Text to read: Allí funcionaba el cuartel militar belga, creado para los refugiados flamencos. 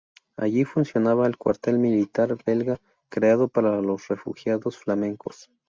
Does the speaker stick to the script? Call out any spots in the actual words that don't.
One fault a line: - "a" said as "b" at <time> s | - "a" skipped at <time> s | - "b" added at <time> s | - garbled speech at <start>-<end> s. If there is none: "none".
none